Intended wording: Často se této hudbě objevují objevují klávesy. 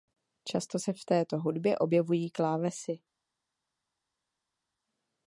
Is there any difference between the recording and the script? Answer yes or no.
yes